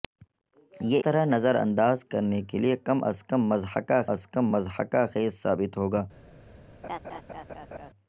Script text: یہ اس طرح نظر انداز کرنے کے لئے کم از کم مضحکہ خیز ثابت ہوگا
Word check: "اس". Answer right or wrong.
wrong